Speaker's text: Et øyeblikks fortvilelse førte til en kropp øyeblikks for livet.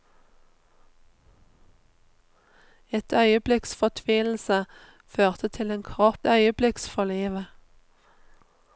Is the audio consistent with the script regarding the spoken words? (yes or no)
yes